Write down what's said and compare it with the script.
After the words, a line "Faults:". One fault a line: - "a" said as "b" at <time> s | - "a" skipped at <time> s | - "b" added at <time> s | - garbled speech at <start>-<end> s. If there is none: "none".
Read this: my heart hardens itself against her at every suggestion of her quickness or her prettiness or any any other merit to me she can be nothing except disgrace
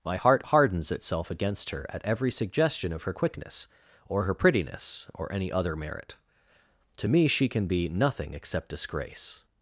my heart hardens itself against her at every suggestion of her quickness or her prettiness or any other merit to me she can be nothing except disgrace
Faults:
- "any" skipped at 5.5 s